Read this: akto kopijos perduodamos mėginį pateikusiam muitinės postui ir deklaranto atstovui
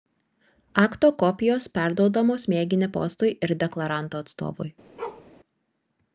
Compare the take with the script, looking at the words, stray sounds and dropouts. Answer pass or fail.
fail